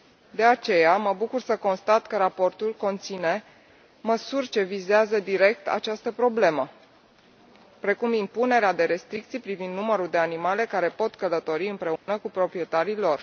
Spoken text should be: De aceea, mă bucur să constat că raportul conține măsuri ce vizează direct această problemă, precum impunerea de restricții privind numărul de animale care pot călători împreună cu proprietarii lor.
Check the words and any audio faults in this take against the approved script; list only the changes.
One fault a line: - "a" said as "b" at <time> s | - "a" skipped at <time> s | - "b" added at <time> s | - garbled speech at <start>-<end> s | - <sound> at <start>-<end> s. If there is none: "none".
- dropout at 12.0-12.1 s